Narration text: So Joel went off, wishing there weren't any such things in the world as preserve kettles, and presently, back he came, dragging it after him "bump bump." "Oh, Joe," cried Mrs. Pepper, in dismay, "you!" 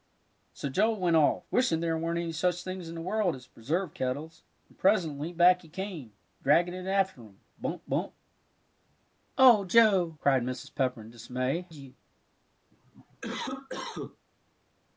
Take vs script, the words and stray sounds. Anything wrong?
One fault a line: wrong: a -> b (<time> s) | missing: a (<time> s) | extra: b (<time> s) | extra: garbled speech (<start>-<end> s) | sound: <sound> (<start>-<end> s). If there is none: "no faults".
sound: cough (12.7-14.2 s)